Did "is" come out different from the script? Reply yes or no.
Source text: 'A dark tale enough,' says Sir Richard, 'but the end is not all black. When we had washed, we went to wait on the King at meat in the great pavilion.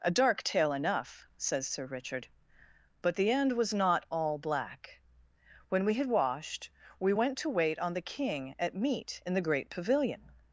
yes